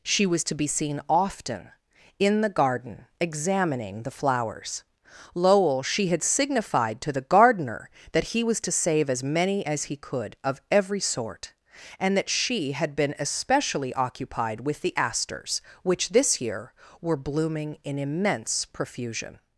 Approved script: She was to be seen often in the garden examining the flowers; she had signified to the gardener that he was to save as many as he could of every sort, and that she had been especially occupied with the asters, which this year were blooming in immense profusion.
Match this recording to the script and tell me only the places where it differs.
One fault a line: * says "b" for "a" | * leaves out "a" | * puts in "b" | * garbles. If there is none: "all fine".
* puts in "lowell"